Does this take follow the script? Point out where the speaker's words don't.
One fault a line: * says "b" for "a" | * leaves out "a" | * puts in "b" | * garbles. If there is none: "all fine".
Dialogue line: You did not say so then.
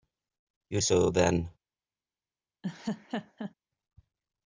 * leaves out "did not say"